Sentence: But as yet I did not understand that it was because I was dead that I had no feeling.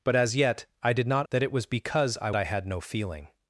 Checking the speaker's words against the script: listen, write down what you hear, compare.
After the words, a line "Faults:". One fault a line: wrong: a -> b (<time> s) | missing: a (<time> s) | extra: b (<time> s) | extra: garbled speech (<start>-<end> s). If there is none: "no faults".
But as yet I did not that it was because I I had no feeling.
Faults:
missing: understand (1.3 s)
missing: was dead that (2.3 s)